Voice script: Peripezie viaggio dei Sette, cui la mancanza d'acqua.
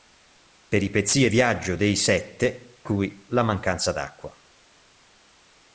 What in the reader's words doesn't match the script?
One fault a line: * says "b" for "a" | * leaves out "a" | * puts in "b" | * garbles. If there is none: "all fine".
all fine